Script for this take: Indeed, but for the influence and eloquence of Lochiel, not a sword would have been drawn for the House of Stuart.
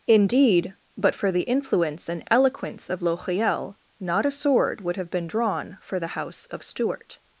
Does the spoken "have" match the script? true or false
true